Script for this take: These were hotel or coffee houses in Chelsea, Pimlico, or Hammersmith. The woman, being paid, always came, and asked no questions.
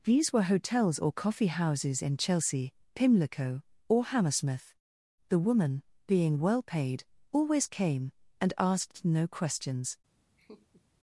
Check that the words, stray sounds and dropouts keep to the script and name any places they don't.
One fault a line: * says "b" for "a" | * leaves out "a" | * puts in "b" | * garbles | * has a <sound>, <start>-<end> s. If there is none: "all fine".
* says "hotels" for "hotel"
* puts in "well"
* has a laugh, 10.4-10.8 s